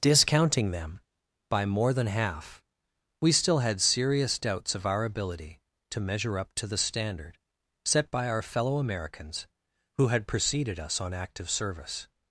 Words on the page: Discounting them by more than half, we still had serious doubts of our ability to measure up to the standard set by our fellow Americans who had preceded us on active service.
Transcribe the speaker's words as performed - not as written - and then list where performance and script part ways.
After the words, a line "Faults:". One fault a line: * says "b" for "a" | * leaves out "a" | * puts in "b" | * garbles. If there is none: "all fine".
Discounting them by more than half, we still had serious doubts of our ability to measure up to the standard set by our fellow Americans who had preceded us on active service.
Faults:
all fine